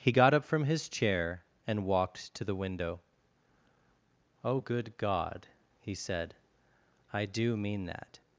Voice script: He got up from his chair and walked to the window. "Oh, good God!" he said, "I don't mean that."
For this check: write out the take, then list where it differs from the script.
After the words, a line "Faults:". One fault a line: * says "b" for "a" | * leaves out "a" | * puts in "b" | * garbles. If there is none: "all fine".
He got up from his chair and walked to the window. "Oh, good God!" he said, "I do mean that."
Faults:
* says "do" for "don't"